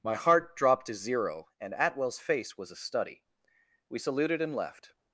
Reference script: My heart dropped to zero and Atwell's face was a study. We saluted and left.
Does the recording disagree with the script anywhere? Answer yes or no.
no